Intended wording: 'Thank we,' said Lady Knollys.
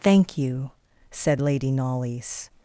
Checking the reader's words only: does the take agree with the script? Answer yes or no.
no